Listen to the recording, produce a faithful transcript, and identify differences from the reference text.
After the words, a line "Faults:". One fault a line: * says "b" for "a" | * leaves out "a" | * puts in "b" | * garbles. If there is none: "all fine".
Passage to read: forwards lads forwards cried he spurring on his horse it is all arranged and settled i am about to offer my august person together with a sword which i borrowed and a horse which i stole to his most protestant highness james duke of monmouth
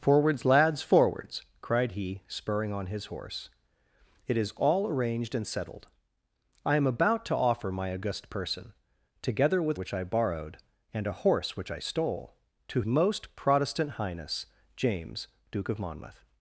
forwards lads forwards cried he spurring on his horse it is all arranged and settled i am about to offer my august person together with which i borrowed and a horse which i stole to most protestant highness james duke of monmouth
Faults:
* leaves out "a sword"
* leaves out "his"